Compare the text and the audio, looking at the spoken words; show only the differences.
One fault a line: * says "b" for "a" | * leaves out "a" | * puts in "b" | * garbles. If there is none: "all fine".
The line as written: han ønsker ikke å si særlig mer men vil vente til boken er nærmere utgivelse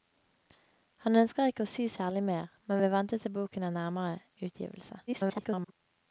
* garbles